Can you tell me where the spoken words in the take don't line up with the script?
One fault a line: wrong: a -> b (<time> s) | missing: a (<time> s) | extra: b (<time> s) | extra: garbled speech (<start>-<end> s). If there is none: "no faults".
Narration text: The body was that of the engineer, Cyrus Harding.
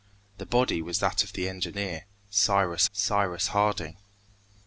extra: Cyrus (2.9 s)